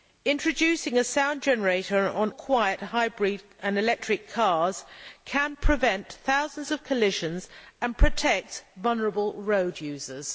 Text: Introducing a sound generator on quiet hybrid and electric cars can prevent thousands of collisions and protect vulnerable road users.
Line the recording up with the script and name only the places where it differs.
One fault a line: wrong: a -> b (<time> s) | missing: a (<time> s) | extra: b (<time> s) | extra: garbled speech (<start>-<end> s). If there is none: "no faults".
no faults